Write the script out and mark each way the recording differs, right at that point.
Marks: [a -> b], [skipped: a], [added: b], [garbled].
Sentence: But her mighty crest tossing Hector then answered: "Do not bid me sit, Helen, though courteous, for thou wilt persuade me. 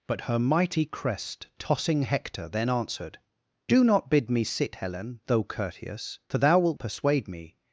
But her mighty crest tossing Hector then answered: "Do not bid me sit, Helen, though courteous, for thou wilt persuade me.